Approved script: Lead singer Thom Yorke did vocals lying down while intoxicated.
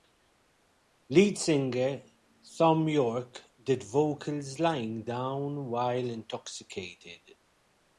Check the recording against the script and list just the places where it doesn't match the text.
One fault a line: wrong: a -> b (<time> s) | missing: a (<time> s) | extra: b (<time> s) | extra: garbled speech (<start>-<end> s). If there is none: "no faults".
no faults